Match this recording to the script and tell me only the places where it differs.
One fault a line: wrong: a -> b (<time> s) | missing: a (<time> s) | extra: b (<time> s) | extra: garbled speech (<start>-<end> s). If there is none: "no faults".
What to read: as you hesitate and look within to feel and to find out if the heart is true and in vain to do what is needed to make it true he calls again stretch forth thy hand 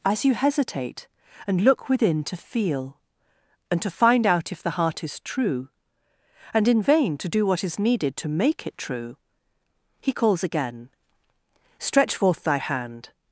no faults